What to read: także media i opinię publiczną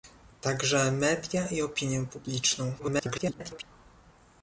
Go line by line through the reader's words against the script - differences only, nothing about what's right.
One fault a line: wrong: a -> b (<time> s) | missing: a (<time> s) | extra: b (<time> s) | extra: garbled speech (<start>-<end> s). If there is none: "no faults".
extra: garbled speech (2.8-3.6 s)